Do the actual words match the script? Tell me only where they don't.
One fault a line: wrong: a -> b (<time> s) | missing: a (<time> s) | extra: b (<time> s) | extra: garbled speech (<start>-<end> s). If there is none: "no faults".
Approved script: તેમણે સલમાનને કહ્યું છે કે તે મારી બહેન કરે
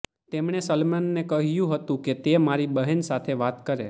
wrong: છે -> હતું (1.7 s)
extra: સાથે વાત (3.0 s)